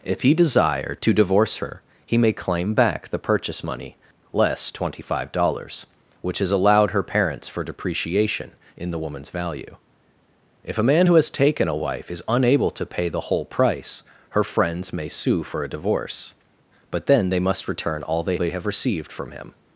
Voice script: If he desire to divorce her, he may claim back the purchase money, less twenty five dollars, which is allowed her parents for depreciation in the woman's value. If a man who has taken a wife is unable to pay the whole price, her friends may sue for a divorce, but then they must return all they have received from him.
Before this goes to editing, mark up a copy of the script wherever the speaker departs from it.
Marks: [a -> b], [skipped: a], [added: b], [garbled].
If he desire to divorce her, he may claim back the purchase money, less twenty five dollars, which is allowed her parents for depreciation in the woman's value. If a man who has taken a wife is unable to pay the whole price, her friends may sue for a divorce, but then they must return all they [added: they] have received from him.